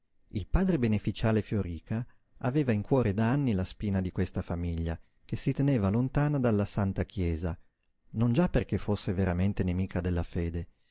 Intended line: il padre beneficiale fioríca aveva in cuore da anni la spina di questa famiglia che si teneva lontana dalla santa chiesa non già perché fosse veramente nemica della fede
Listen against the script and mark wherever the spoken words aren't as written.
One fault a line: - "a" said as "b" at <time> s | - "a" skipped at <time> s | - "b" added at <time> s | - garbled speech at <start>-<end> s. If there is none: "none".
none